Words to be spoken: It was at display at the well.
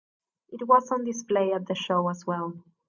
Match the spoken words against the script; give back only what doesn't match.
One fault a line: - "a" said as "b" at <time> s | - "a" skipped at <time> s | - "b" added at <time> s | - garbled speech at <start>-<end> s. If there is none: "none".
- "at" said as "on" at 0.9 s
- "show as" added at 1.7 s